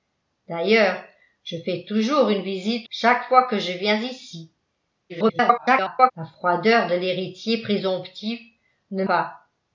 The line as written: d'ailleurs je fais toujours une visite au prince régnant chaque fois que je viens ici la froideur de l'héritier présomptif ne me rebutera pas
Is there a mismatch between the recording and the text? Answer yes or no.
yes